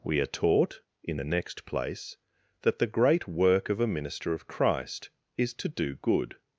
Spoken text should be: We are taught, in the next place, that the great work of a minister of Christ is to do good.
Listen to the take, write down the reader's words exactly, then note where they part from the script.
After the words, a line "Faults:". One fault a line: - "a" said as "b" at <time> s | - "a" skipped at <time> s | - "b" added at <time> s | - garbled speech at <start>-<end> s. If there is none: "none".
We are taught, in the next place, that the great work of a minister of Christ is to do good.
Faults:
none